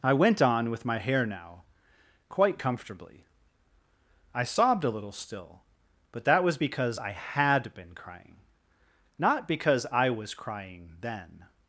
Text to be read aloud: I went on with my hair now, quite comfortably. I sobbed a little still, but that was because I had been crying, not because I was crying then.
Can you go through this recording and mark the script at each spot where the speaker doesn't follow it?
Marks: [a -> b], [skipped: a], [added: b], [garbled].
I went on with my hair now, quite comfortably. I sobbed a little still, but that was because I had been crying, not because I was crying then.